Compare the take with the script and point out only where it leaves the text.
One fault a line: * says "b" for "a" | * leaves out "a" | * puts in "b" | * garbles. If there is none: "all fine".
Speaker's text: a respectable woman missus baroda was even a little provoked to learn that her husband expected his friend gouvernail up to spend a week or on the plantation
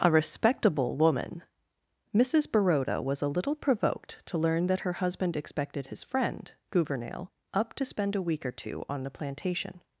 * leaves out "even"
* puts in "two"